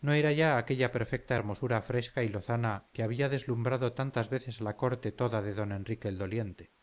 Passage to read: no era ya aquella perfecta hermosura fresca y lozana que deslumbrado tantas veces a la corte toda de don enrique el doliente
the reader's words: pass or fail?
fail